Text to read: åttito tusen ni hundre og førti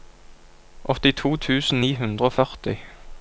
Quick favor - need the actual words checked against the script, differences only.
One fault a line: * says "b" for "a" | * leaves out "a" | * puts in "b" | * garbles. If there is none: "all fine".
all fine